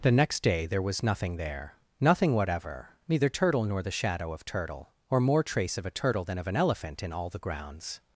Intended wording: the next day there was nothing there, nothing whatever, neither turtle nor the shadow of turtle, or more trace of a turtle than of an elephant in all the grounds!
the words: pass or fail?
pass